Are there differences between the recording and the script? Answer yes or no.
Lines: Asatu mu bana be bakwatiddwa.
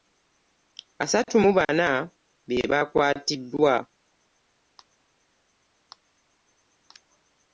no